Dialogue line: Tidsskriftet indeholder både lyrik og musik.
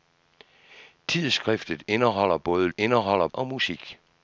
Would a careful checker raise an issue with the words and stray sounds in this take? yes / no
yes